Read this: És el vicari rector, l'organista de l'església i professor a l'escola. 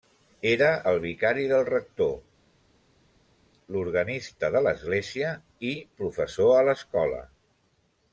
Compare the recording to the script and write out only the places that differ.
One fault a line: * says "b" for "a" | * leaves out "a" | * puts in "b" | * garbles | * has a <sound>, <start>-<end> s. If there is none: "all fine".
* says "Era" for "És"
* puts in "del"